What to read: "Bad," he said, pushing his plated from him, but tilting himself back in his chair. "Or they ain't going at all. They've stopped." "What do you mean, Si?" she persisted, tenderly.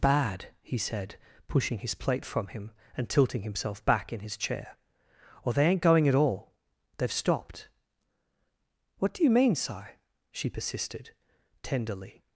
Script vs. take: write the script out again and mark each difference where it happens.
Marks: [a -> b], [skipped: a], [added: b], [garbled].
"Bad," he said, pushing his [plated -> plate] from him, [but -> and] tilting himself back in his chair. "Or they ain't going at all. They've stopped." "What do you mean, Si?" she persisted, tenderly.